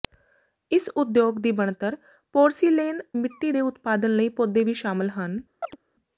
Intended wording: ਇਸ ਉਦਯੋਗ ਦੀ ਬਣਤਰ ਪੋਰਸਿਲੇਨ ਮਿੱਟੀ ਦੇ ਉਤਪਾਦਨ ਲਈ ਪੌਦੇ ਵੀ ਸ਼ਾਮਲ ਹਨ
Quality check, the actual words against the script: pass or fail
pass